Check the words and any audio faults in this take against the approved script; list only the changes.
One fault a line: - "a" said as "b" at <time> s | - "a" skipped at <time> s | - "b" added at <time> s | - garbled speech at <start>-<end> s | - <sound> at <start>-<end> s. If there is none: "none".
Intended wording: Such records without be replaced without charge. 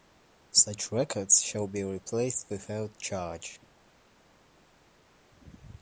- "without" said as "shall" at 1.4 s